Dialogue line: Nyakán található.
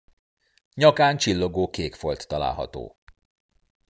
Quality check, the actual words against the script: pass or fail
fail